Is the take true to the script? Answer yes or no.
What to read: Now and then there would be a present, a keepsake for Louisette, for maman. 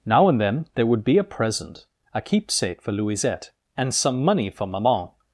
no